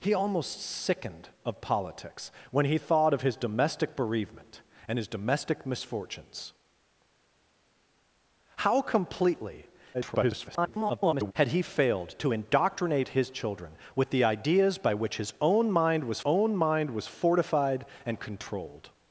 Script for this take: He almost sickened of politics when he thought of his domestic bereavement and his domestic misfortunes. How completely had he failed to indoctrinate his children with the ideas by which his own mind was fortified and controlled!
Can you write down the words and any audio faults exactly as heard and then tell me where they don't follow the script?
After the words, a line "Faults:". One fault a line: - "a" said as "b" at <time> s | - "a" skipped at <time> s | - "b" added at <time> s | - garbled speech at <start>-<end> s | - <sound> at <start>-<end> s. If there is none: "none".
He almost sickened of politics when he thought of his domestic bereavement and his domestic misfortunes. How completely [garbled] had he failed to indoctrinate his children with the ideas by which his own mind was own mind was fortified and controlled!
Faults:
- garbled speech at 9.9-11.3 s
- "own mind was" added at 16.2 s